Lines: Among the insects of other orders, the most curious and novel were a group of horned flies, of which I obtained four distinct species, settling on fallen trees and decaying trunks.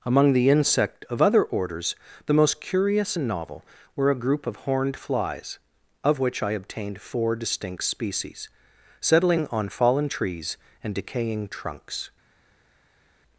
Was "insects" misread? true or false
true